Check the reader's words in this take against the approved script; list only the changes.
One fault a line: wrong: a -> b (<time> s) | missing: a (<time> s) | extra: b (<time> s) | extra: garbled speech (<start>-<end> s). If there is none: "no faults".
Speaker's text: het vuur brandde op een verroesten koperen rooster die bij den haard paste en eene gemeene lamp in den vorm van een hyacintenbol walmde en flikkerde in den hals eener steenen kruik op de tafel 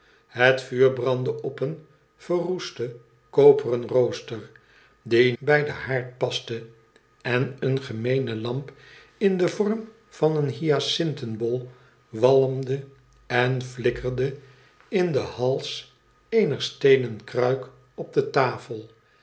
no faults